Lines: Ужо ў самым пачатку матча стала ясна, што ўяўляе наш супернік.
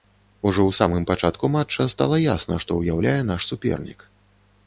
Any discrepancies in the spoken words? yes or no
no